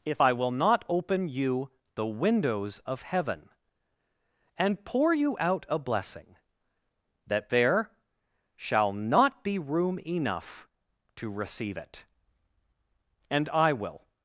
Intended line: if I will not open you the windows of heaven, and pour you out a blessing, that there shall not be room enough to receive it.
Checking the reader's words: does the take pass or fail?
fail